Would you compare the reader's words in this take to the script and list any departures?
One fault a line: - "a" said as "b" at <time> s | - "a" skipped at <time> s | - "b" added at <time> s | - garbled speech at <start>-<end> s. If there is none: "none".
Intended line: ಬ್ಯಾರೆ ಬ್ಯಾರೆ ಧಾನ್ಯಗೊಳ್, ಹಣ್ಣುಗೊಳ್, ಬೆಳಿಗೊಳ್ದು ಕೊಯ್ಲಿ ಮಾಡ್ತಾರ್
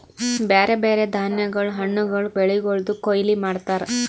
none